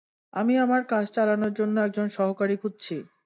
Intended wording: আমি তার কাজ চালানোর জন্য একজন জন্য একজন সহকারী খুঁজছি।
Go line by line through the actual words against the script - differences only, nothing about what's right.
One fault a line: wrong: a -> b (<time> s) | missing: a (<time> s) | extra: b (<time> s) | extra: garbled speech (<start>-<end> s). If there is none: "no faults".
wrong: তার -> আমার (0.6 s)
missing: জন্য একজন (2.1 s)